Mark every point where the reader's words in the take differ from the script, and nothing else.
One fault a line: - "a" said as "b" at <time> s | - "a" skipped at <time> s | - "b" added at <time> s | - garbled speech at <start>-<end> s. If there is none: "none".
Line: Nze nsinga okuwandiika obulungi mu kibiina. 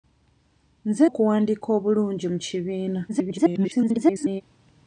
- "nsinga" skipped at 1.1 s
- garbled speech at 3.1-4.4 s